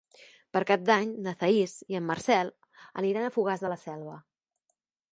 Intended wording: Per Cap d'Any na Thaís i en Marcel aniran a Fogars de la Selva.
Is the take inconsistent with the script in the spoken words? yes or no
no